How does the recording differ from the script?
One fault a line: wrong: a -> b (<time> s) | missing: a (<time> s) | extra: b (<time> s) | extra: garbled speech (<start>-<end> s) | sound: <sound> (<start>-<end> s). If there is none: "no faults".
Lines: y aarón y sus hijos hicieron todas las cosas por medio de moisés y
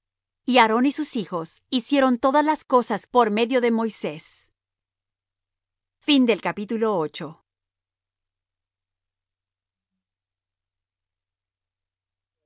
no faults